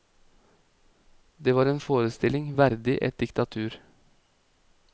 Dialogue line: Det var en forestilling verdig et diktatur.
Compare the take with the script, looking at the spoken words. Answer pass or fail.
pass